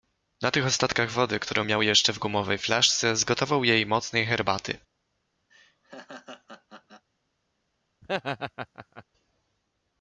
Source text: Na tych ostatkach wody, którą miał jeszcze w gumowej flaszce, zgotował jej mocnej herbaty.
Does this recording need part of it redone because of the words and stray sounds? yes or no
yes